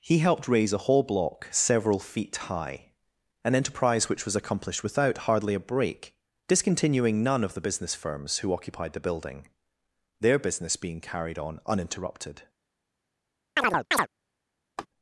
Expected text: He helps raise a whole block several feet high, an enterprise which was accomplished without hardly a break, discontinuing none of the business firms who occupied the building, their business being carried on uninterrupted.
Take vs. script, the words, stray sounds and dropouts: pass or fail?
fail